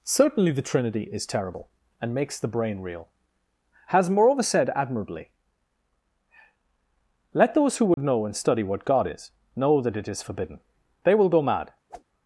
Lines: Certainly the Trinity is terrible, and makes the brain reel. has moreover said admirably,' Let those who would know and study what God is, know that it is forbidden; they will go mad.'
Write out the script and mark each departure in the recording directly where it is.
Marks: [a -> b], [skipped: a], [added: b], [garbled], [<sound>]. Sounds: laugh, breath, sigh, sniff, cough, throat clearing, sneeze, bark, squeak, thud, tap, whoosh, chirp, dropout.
Certainly the Trinity is terrible, and makes the brain reel. has moreover said admirably,' Let those who would [dropout] know and study what God is, know that it is forbidden; they will go mad.' [whoosh]